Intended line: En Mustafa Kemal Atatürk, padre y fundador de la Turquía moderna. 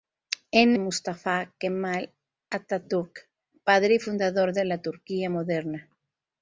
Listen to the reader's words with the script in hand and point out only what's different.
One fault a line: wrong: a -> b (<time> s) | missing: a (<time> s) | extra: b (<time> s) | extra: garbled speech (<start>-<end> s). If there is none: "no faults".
no faults